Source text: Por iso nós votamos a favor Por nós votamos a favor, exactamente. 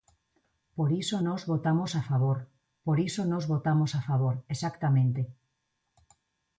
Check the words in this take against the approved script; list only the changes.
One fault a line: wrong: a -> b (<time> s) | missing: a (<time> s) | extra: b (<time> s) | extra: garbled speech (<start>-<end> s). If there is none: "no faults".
extra: iso (3.1 s)